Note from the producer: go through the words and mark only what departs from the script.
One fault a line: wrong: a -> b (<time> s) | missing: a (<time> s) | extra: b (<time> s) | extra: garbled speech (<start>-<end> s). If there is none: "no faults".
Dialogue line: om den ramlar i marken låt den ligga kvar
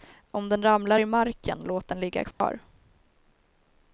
no faults